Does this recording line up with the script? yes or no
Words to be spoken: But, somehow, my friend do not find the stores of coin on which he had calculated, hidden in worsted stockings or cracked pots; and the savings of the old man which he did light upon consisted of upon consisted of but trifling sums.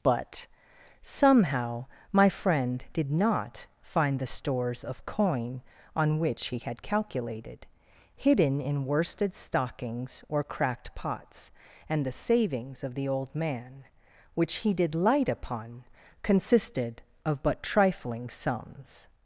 no